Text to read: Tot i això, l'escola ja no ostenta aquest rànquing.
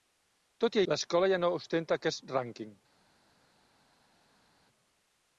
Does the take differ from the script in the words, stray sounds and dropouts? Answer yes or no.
yes